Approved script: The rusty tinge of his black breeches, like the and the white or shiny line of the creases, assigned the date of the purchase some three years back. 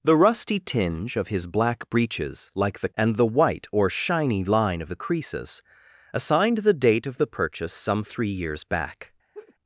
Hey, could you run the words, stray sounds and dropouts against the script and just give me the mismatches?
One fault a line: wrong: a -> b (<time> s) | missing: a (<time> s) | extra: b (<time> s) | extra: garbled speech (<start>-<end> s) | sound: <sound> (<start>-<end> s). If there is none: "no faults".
sound: laugh (9.3-9.5 s)